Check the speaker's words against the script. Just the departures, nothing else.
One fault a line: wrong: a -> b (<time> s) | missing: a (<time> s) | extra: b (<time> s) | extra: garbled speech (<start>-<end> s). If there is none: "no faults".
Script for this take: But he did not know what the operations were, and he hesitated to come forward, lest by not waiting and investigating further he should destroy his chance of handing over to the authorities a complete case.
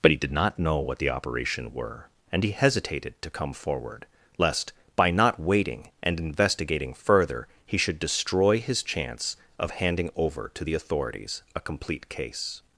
wrong: operations -> operation (1.1 s)